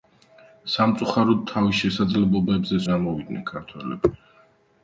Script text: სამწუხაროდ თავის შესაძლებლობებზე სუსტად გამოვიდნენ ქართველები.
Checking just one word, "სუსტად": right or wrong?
wrong